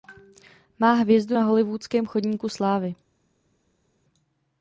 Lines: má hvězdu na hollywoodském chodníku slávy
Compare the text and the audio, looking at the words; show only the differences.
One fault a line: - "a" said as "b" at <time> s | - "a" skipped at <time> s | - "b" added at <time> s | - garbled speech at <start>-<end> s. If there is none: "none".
none